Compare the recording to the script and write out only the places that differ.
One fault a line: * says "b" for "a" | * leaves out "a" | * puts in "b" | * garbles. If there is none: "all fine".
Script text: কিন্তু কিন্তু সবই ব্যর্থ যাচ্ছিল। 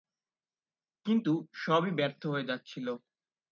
* leaves out "কিন্তু"
* puts in "হয়ে"